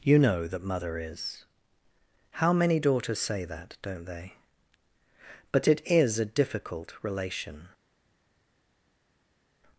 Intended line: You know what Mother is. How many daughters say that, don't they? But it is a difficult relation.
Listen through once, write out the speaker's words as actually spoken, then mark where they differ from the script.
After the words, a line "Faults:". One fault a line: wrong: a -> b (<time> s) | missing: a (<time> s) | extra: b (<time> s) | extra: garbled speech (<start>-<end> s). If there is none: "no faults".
You know that Mother is. How many daughters say that, don't they? But it is a difficult relation.
Faults:
wrong: what -> that (0.5 s)